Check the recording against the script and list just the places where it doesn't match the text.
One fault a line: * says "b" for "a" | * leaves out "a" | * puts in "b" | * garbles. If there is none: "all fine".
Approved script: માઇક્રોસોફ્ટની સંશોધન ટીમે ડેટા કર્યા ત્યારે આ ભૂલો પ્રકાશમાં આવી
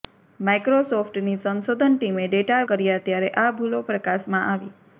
all fine